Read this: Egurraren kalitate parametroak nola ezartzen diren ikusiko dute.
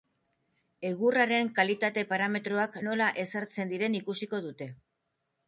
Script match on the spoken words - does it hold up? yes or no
yes